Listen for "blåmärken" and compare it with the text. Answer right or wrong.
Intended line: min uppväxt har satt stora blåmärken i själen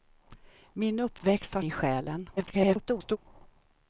wrong